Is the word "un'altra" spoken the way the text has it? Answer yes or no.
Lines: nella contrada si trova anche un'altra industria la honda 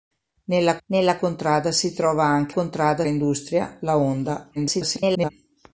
no